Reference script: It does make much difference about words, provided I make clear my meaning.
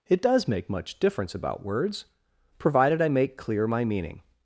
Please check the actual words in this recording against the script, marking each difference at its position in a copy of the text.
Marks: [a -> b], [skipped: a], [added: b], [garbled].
It does make much difference about words, provided I make clear my meaning.